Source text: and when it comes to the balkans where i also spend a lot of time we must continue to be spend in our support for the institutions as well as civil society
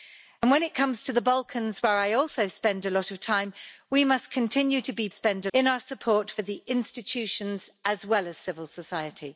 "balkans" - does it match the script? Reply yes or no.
yes